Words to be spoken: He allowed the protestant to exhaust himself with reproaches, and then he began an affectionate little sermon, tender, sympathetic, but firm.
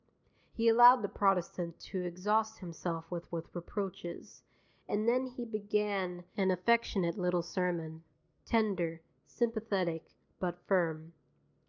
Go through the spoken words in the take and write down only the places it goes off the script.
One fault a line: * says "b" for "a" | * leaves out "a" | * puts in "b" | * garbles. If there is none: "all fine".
* puts in "with"